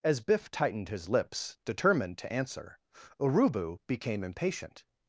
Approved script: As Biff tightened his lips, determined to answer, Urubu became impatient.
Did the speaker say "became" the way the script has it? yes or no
yes